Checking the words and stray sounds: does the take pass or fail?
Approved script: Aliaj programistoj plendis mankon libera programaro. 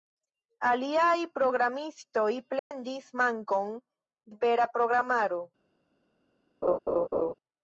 fail